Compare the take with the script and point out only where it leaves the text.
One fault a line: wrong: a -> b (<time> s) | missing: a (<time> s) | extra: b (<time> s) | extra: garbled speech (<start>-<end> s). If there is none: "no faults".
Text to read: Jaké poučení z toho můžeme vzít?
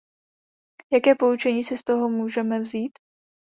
extra: si (1.6 s)